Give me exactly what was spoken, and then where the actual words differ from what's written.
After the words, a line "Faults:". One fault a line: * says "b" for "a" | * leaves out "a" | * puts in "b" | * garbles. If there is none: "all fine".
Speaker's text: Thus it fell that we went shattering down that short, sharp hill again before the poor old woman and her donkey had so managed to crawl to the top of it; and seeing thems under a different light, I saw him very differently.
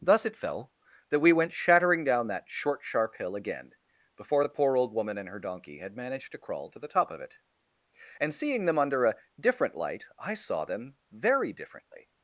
Thus it fell that we went shattering down that short, sharp hill again before the poor old woman and her donkey had managed to crawl to the top of it; and seeing them under a different light, I saw them very differently.
Faults:
* leaves out "so"
* says "them" for "thems"
* says "them" for "him"